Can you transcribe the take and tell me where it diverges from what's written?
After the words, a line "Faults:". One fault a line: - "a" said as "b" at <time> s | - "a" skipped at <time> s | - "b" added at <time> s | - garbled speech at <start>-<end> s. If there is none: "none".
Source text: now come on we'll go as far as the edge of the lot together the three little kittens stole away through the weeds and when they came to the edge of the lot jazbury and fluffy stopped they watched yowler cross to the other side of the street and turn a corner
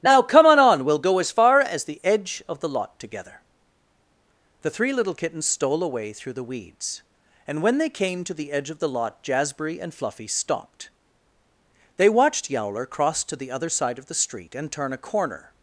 now come on on we'll go as far as the edge of the lot together the three little kittens stole away through the weeds and when they came to the edge of the lot jazbury and fluffy stopped they watched yowler cross to the other side of the street and turn a corner
Faults:
- "on" added at 0.6 s